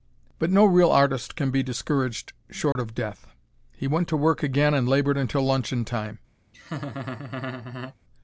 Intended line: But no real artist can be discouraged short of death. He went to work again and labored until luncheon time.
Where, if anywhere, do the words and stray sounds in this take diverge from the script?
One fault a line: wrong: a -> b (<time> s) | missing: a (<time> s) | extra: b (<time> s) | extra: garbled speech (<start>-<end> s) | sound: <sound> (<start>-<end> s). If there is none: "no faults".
sound: dropout (2.7-2.8 s)
sound: laugh (6.5-8.0 s)